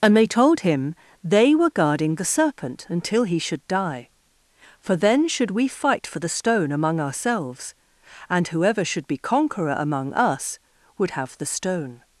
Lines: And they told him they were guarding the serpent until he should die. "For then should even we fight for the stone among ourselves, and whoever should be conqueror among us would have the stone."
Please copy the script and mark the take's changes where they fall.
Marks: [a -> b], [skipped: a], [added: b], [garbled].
And they told him they were guarding the serpent until he should die. "For then should [skipped: even] we fight for the stone among ourselves, and whoever should be conqueror among us would have the stone."